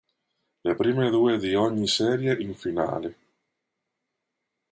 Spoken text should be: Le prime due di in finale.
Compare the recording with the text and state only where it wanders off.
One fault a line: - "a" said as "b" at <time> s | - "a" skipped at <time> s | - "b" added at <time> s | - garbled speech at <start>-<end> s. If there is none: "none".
- "ogni serie" added at 1.5 s